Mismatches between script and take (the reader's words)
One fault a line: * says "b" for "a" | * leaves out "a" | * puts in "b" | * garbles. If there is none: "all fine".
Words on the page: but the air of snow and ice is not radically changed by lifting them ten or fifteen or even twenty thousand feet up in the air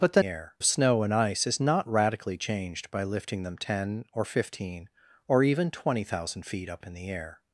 all fine